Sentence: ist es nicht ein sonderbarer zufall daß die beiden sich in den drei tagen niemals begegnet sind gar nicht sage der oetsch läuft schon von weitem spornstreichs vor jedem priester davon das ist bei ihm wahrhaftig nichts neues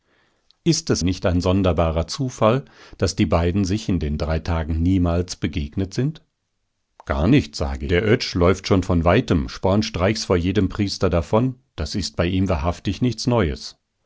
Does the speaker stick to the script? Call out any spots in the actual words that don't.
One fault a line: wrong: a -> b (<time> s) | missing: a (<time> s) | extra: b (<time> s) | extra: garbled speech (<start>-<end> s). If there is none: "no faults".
no faults